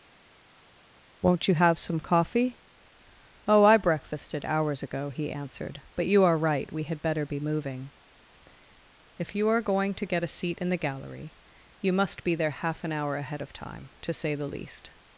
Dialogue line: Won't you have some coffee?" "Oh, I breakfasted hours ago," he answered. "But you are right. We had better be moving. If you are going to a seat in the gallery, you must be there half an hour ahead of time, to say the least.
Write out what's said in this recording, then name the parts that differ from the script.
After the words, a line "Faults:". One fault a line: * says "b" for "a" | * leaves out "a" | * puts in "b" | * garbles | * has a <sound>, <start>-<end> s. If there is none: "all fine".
Won't you have some coffee?" "Oh, I breakfasted hours ago," he answered. "But you are right. We had better be moving. If you are going to get a seat in the gallery, you must be there half an hour ahead of time, to say the least.
Faults:
* puts in "get"